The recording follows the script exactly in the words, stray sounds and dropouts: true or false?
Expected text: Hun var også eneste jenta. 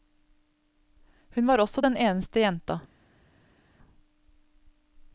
false